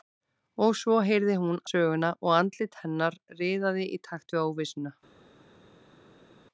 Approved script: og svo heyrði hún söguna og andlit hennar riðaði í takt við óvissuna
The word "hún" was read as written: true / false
true